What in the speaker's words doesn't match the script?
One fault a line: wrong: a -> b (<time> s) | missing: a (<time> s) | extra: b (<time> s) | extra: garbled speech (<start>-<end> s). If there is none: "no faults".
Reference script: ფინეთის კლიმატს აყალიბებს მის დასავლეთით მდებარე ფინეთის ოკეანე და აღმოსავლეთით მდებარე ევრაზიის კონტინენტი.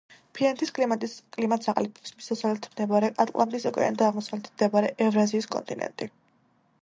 wrong: ფინეთის -> ატლანტის (3.2 s)